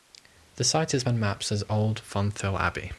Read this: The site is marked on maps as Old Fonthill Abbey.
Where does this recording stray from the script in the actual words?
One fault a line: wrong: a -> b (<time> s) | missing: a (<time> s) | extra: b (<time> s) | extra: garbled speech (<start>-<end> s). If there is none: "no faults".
missing: marked (1.1 s)